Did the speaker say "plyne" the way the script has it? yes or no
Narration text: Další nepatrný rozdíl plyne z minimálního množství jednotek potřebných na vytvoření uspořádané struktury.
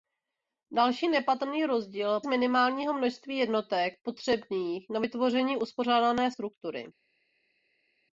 no